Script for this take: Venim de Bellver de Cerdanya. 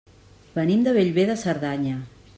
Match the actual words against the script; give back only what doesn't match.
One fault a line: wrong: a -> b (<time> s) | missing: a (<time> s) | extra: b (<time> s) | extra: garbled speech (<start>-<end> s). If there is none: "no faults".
no faults